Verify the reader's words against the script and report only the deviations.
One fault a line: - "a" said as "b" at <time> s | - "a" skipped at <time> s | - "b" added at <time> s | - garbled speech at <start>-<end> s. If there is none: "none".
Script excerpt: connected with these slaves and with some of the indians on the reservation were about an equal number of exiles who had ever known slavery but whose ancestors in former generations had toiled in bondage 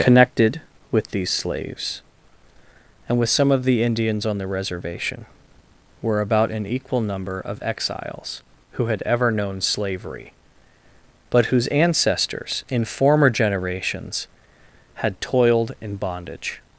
none